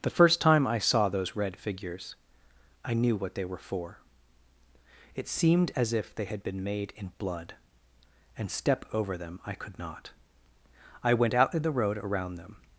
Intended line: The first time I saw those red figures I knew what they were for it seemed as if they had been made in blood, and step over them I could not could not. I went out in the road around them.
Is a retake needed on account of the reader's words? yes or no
yes